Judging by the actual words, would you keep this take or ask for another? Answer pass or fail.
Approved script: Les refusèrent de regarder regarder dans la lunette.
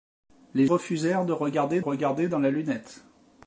pass